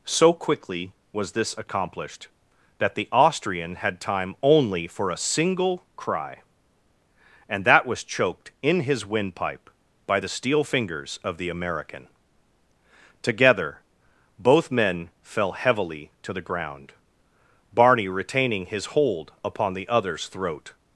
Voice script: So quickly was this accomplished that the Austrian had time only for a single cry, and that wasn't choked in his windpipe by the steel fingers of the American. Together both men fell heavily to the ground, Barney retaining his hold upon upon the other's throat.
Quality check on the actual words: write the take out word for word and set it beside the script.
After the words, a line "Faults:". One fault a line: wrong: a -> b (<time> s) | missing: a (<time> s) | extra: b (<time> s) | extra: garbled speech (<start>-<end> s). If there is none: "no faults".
So quickly was this accomplished that the Austrian had time only for a single cry, and that was choked in his windpipe by the steel fingers of the American. Together both men fell heavily to the ground, Barney retaining his hold upon the other's throat.
Faults:
wrong: wasn't -> was (7.8 s)
missing: upon (19.7 s)